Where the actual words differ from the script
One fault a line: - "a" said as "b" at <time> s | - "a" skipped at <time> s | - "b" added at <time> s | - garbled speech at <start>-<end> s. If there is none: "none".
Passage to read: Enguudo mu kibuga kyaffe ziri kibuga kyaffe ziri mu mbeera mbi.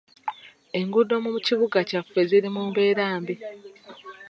- "kibuga kyaffe ziri" skipped at 2.5 s